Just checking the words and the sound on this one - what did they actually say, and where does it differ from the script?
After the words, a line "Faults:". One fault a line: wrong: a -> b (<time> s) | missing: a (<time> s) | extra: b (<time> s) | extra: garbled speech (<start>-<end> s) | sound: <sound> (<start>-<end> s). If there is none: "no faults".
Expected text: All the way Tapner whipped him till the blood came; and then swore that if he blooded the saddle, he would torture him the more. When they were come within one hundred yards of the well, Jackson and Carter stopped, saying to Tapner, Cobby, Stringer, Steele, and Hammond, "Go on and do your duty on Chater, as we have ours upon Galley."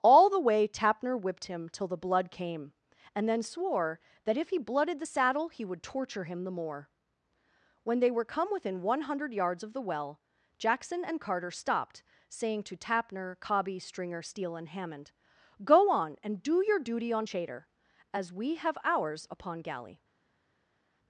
All the way Tapner whipped him till the blood came; and then swore that if he blooded the saddle, he would torture him the more. When they were come within one hundred yards of the well, Jackson and Carter stopped, saying to Tapner, Cobby, Stringer, Steele, and Hammond, "Go on and do your duty on Chater, as we have ours upon Galley."
Faults:
no faults